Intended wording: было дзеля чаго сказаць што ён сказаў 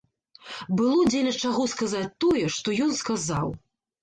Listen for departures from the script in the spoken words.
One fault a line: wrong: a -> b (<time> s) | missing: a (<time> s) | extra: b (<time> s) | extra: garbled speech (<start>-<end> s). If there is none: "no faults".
extra: тое (2.3 s)